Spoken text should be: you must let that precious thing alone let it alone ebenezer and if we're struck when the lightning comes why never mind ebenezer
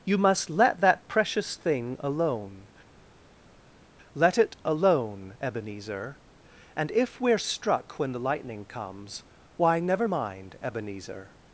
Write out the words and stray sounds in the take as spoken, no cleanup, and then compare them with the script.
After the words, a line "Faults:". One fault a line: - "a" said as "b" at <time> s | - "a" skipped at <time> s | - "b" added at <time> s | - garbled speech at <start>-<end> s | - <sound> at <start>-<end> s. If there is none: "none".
you must let that precious thing alone let it alone ebenezer and if we're struck when the lightning comes why never mind ebenezer
Faults:
none